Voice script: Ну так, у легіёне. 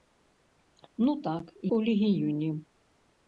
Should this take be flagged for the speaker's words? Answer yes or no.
no